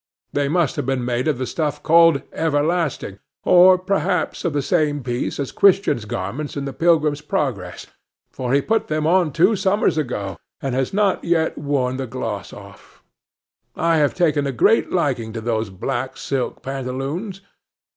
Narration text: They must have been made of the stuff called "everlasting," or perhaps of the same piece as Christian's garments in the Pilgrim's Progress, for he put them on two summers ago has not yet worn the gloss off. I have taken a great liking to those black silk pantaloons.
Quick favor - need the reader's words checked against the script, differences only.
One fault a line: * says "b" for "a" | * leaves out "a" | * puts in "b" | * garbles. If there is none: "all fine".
* puts in "and"